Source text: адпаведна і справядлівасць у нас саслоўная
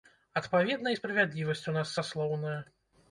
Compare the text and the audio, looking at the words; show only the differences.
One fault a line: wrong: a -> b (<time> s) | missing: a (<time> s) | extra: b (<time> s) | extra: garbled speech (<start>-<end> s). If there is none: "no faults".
no faults